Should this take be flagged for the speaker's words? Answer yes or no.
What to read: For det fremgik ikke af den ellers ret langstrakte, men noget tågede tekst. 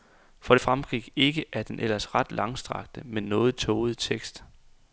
no